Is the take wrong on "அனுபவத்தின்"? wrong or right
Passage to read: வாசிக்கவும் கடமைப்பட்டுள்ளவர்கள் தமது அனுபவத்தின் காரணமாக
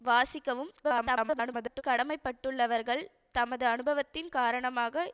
right